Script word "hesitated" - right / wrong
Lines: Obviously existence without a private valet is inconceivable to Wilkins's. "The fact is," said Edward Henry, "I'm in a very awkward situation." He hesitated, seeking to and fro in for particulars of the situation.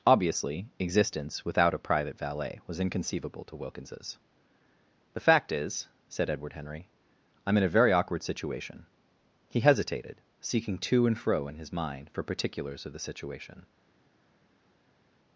right